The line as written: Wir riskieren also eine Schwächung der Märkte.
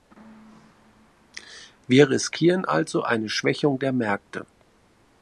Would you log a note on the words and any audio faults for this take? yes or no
no